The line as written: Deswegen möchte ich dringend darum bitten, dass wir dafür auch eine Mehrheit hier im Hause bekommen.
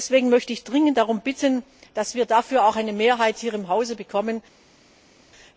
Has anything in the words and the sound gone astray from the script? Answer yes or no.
no